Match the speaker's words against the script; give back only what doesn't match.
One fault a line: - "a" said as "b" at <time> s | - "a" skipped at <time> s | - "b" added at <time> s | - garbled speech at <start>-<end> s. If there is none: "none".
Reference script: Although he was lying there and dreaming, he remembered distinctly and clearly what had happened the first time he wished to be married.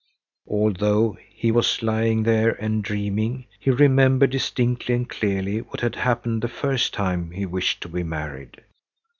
none